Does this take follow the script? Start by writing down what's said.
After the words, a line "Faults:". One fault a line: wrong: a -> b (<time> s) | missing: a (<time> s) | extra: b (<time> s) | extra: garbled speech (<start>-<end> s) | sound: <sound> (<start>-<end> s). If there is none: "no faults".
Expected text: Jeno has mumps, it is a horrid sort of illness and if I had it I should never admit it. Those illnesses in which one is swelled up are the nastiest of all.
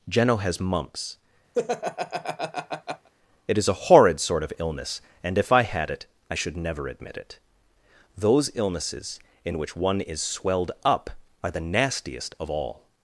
Jeno has mumps, it is a horrid sort of illness and if I had it I should never admit it. Those illnesses in which one is swelled up are the nastiest of all.
Faults:
sound: laugh (1.5-3.1 s)